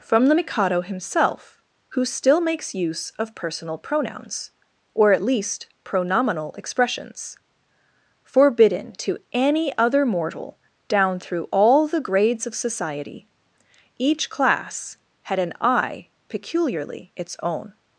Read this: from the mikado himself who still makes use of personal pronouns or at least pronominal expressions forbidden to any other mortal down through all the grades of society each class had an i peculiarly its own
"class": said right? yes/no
yes